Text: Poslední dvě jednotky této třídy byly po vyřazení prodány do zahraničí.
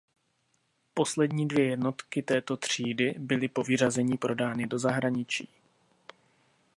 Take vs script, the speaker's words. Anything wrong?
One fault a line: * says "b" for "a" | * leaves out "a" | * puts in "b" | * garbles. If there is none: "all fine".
all fine